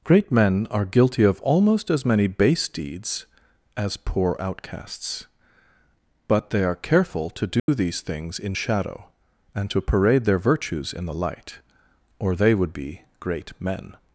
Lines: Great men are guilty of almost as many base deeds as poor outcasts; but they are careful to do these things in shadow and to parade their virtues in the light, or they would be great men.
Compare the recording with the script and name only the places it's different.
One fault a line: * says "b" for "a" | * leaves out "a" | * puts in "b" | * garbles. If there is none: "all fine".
all fine